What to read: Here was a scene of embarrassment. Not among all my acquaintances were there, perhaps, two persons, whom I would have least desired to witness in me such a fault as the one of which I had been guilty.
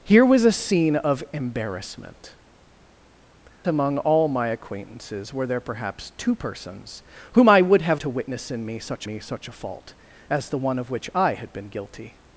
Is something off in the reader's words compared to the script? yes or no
yes